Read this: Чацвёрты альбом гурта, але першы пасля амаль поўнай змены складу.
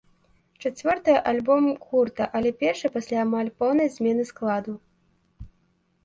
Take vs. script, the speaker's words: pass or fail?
pass